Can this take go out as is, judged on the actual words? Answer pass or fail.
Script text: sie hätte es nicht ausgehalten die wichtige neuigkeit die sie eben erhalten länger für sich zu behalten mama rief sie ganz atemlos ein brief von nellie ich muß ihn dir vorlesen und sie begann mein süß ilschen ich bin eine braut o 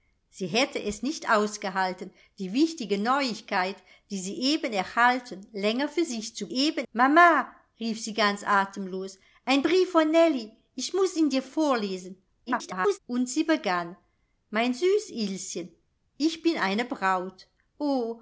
fail